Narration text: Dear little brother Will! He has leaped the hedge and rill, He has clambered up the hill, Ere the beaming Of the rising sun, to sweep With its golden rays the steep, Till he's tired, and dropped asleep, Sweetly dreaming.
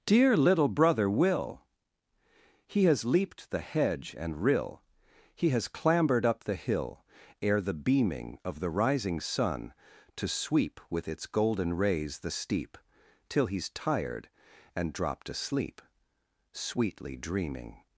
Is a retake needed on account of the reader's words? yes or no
no